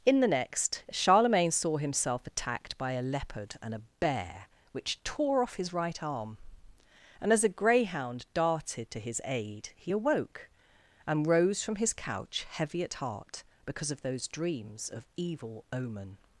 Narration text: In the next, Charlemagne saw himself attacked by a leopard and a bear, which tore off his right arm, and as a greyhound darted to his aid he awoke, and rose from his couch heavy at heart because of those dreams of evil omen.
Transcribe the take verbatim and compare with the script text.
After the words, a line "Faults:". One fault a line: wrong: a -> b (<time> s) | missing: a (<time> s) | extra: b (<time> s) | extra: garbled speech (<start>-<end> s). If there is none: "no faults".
In the next, Charlemagne saw himself attacked by a leopard and a bear, which tore off his right arm, and as a greyhound darted to his aid he awoke, and rose from his couch heavy at heart because of those dreams of evil omen.
Faults:
no faults